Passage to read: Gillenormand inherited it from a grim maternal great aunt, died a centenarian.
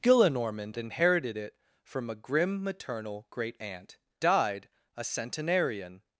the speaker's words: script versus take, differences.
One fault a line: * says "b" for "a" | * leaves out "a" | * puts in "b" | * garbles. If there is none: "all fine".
all fine